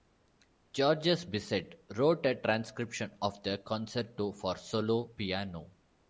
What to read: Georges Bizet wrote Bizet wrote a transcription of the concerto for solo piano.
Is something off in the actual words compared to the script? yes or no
yes